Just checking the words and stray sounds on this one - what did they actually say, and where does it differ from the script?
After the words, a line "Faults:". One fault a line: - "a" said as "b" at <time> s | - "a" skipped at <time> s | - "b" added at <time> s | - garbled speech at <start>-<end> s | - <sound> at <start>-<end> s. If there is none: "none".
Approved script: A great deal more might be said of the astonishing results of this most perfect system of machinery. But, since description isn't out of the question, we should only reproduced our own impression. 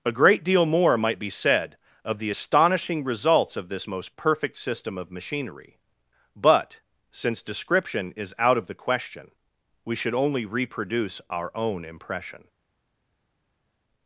A great deal more might be said of the astonishing results of this most perfect system of machinery. But, since description is out of the question, we should only reproduce our own impression.
Faults:
- "isn't" said as "is" at 8.2 s
- "reproduced" said as "reproduce" at 10.5 s